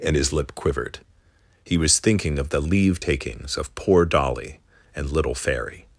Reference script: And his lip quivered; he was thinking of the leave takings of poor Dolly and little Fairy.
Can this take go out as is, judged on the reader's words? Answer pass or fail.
pass